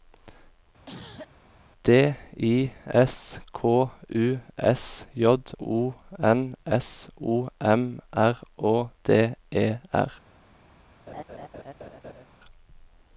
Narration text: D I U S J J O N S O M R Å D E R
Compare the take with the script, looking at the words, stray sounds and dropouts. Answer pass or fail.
fail